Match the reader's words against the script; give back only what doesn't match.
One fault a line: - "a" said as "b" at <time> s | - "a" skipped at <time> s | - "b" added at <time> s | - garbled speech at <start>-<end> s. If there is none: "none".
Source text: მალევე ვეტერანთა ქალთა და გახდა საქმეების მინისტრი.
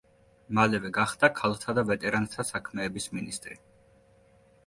- "ვეტერანთა" said as "გახდა" at 1.0 s
- "გახდა" said as "ვეტერანთა" at 1.9 s